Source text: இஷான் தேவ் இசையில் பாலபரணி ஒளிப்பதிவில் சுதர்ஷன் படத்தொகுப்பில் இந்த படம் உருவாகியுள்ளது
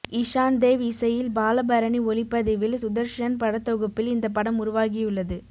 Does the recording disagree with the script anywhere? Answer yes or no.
no